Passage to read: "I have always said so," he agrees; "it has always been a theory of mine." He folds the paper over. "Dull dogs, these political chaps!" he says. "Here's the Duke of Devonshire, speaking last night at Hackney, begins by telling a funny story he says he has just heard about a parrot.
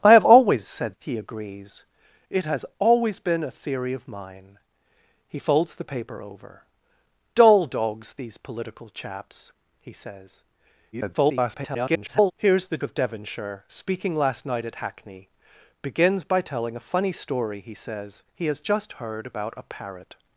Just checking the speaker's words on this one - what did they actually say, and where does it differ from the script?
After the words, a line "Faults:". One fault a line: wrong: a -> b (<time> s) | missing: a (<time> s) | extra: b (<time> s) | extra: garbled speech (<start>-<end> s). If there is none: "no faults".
"I have always said," he agrees; "it has always been a theory of mine." He folds the paper over. "Dull dogs, these political chaps!" he says. [garbled] "Here's the Of Devonshire, speaking last night at Hackney, begins by telling a funny story he says he has just heard about a parrot.
Faults:
missing: so (1.0 s)
extra: garbled speech (10.9-12.3 s)
missing: Duke (12.8 s)